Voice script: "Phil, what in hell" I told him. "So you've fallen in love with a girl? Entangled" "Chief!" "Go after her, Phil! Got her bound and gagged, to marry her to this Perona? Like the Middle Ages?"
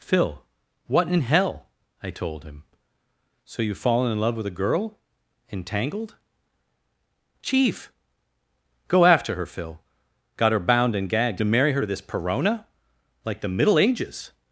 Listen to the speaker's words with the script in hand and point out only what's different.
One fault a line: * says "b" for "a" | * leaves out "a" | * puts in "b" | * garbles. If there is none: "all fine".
all fine